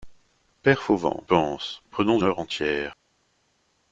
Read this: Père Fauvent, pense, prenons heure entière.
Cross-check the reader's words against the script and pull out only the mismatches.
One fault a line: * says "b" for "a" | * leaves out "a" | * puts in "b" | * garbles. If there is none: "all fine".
all fine